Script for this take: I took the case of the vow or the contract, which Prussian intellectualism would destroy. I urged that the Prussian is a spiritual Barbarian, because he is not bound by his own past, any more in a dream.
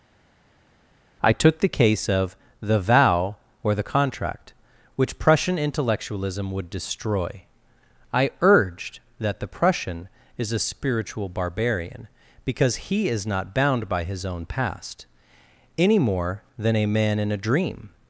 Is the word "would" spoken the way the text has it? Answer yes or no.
yes